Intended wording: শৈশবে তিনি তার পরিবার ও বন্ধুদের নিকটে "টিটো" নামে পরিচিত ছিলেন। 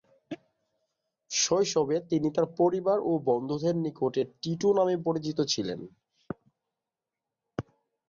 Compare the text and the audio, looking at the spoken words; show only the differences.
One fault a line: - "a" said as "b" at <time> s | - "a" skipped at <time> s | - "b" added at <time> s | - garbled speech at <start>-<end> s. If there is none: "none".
none